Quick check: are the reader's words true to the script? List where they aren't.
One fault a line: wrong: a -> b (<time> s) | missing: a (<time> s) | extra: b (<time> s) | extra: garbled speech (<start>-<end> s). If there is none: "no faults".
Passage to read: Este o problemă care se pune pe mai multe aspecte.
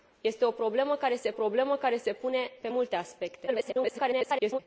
extra: problemă care se (1.3 s)
missing: mai (2.7 s)
extra: garbled speech (3.5-4.6 s)